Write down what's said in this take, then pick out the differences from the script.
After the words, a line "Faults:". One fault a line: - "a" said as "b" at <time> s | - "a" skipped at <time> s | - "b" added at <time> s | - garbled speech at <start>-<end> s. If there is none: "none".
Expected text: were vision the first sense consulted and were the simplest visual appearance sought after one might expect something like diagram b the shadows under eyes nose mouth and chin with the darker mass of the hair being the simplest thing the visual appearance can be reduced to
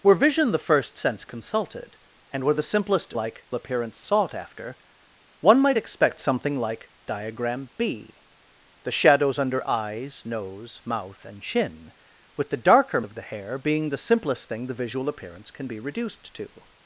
were vision the first sense consulted and were the simplest like appearance sought after one might expect something like diagram b the shadows under eyes nose mouth and chin with the darker of the hair being the simplest thing the visual appearance can be reduced to
Faults:
- "visual" said as "like" at 3.1 s
- "mass" skipped at 13.0 s